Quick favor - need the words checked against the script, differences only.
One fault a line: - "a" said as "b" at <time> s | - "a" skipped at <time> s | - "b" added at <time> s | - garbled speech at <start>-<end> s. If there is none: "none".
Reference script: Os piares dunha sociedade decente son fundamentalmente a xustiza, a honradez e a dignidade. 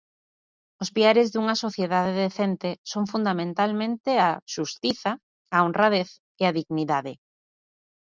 none